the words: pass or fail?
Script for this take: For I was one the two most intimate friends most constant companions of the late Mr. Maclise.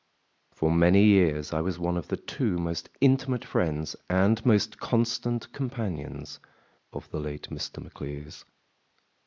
fail